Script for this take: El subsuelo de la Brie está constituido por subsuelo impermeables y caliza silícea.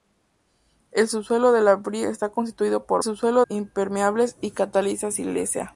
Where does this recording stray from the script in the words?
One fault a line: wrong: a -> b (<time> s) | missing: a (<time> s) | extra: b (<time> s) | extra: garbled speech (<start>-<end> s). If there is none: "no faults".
no faults